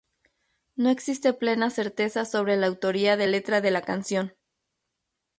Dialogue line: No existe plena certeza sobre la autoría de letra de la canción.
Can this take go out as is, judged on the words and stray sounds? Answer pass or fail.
pass